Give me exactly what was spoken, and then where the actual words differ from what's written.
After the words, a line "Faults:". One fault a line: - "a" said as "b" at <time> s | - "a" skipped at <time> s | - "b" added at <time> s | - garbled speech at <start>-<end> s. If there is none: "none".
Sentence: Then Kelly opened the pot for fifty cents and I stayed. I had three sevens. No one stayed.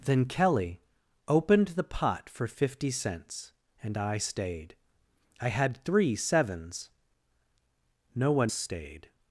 Then Kelly opened the pot for fifty cents and I stayed. I had three sevens. No one stayed.
Faults:
none